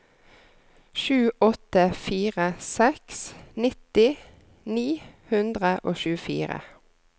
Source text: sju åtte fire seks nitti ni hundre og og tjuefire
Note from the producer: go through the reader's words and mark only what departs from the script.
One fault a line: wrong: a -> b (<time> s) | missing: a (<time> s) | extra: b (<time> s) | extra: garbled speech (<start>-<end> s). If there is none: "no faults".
missing: og (6.0 s)